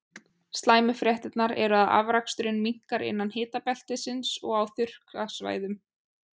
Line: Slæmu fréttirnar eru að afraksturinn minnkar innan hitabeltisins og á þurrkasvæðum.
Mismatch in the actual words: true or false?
false